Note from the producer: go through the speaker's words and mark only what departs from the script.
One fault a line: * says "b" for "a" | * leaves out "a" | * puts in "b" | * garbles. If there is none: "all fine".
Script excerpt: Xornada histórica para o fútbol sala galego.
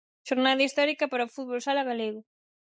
all fine